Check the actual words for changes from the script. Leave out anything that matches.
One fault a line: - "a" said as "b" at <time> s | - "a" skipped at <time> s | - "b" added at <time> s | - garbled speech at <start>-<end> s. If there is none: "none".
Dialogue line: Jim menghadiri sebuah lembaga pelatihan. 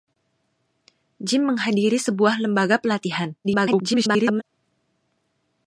- garbled speech at 3.4-4.4 s